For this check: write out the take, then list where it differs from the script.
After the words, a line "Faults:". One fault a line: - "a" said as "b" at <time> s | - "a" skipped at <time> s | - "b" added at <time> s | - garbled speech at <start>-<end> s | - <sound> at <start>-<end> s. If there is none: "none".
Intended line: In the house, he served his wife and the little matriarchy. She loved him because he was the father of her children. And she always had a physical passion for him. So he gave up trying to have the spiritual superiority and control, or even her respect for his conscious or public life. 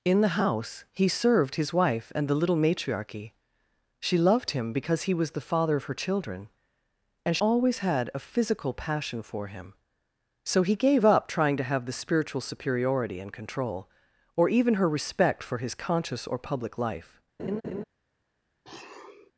In the house, he served his wife and the little matriarchy. She loved him because he was the father of her children. And always had a physical passion for him. So he gave up trying to have the spiritual superiority and control, or even her respect for his conscious or public life.
Faults:
- "she" skipped at 7.4 s
- laugh at 17.4-17.8 s
- sniff at 18.6-19.3 s